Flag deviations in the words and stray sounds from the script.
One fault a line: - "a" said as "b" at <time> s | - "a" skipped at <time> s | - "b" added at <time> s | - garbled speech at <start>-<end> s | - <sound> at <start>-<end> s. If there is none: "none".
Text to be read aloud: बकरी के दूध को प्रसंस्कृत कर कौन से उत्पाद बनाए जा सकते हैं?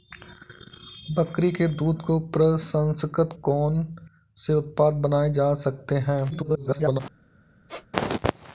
- "कर" skipped at 3.4 s
- garbled speech at 6.3-7.0 s
- squeak at 7.7-7.9 s